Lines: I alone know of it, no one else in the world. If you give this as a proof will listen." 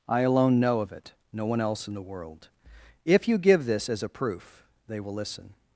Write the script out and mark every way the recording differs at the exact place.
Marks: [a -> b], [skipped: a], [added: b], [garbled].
I alone know of it, no one else in the world. If you give this as a proof [added: they] will listen."